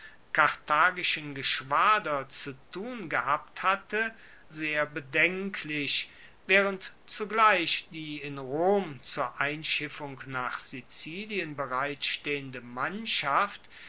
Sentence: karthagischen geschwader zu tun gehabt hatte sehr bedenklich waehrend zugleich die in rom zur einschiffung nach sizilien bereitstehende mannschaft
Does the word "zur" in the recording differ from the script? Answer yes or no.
no